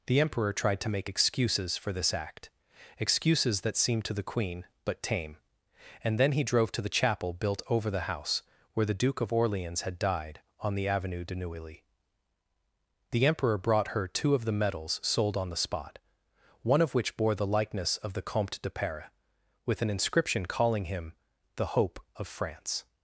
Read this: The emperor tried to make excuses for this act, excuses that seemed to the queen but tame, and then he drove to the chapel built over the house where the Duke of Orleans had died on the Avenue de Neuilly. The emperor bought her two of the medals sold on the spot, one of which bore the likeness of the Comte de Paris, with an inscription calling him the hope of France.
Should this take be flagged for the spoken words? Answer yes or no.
yes